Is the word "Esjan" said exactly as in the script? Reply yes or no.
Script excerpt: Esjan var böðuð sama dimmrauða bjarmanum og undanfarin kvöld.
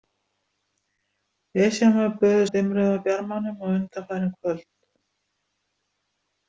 yes